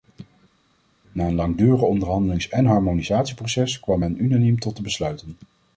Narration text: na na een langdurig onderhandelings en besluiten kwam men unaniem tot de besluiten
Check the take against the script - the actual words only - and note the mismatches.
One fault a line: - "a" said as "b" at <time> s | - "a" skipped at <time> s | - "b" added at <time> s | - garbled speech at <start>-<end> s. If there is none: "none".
- "na" skipped at 1.3 s
- "besluiten" said as "harmonisatieproces" at 2.6 s